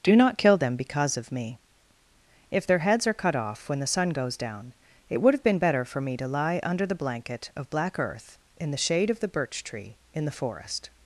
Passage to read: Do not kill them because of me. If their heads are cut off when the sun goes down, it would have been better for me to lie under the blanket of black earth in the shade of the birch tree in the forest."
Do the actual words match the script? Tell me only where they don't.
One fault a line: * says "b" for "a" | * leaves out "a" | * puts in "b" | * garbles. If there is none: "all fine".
all fine